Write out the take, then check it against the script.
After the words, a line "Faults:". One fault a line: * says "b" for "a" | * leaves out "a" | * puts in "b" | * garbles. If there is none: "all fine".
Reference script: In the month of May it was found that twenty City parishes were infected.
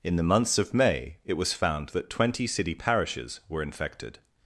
In the months of May it was found that twenty City parishes were infected.
Faults:
* says "months" for "month"